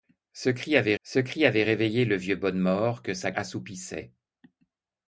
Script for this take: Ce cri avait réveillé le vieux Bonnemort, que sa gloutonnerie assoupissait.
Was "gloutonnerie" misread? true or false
true